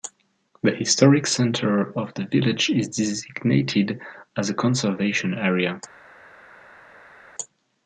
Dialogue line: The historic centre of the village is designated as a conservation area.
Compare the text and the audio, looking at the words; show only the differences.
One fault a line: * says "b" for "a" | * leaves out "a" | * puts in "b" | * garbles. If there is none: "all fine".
all fine